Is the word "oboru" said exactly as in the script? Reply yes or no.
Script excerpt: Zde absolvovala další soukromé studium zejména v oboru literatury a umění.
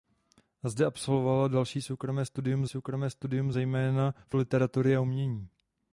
no